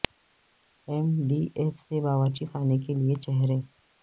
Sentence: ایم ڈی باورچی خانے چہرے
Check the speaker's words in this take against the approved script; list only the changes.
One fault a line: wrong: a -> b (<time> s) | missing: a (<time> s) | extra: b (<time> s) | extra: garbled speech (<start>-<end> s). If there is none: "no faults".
extra: ایف سے (1.6 s)
extra: کے لئے (2.8 s)